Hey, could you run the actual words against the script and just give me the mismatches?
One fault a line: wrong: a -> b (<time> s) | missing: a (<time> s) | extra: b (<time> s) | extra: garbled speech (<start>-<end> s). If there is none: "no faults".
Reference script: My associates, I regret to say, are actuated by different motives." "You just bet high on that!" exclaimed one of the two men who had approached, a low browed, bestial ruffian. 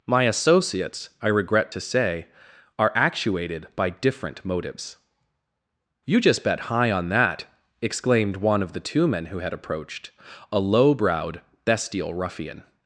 no faults